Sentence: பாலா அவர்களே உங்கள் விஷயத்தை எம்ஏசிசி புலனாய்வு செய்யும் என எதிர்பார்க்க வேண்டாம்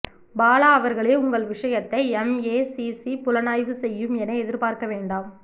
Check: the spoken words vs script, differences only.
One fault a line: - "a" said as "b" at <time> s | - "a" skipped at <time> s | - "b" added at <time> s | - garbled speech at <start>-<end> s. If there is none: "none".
none